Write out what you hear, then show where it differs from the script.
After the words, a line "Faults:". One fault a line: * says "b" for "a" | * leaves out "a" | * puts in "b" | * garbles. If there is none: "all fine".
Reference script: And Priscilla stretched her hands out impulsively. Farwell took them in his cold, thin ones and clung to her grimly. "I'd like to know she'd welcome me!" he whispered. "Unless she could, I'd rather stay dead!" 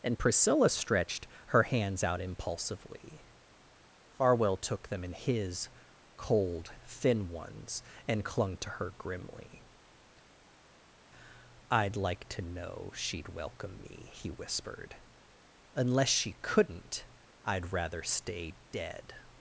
And Priscilla stretched her hands out impulsively. Farwell took them in his cold, thin ones and clung to her grimly. "I'd like to know she'd welcome me!" he whispered. "Unless she couldn't, I'd rather stay dead!"
Faults:
* says "couldn't" for "could"